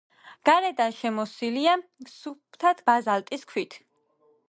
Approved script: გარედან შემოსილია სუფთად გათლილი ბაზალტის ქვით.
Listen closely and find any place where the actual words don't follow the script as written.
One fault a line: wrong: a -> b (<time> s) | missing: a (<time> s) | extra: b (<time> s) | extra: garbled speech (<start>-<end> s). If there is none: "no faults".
missing: გათლილი (2.8 s)